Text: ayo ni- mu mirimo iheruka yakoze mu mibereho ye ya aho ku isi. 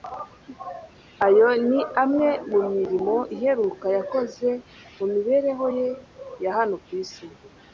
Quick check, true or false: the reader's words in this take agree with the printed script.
false